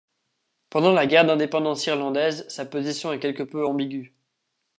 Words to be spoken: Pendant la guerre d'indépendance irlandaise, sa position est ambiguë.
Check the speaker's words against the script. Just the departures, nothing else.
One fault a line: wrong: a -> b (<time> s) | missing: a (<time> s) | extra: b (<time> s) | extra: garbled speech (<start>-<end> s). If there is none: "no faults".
extra: quelque peu (3.2 s)